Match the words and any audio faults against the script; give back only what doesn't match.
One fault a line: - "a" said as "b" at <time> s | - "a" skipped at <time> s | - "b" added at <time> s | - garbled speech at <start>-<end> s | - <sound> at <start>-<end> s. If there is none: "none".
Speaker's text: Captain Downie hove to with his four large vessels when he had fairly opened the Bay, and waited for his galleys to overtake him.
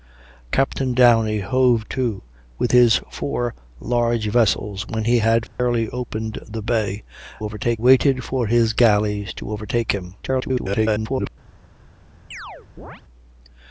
- dropout at 5.5-5.6 s
- "and" said as "overtake" at 7.4 s
- garbled speech at 10.2-11.3 s
- chirp at 12.3-13.0 s